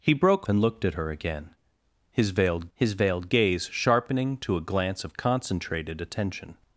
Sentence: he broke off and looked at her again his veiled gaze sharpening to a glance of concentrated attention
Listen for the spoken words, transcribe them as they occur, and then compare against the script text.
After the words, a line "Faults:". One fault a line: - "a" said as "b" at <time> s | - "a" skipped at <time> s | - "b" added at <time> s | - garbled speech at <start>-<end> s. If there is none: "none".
he broke and looked at her again his veiled his veiled gaze sharpening to a glance of concentrated attention
Faults:
- "off" skipped at 0.5 s
- "his veiled" added at 2.7 s